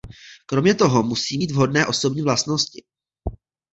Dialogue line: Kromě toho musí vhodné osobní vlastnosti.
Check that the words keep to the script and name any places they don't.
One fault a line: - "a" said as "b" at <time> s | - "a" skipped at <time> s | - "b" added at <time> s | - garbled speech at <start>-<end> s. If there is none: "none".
- "mít" added at 1.4 s